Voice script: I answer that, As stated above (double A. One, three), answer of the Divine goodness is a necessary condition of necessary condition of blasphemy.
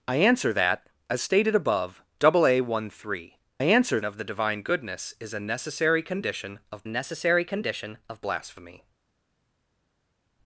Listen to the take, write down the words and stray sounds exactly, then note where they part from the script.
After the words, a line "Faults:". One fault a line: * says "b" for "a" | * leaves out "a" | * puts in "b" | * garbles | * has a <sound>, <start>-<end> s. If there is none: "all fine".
I answer that, As stated above (double A. One, three), answer of the Divine goodness is a necessary condition of necessary condition of blasphemy.
Faults:
all fine